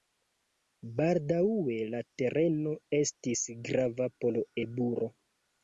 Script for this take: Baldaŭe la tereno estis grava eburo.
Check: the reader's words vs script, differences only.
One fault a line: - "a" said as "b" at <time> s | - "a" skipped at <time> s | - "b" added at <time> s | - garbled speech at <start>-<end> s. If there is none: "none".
- "por" added at 4.2 s